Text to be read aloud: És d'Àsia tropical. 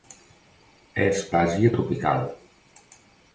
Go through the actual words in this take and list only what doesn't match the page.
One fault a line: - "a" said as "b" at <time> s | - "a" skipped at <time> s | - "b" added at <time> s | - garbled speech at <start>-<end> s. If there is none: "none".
none